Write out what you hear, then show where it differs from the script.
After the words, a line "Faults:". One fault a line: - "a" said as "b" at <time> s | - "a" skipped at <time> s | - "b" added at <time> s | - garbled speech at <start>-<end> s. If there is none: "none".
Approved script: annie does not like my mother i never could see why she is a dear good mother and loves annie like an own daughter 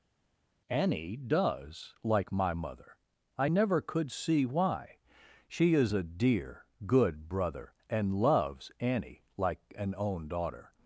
annie does like my mother i never could see why she is a dear good brother and loves annie like an own daughter
Faults:
- "not" skipped at 1.9 s
- "mother" said as "brother" at 7.3 s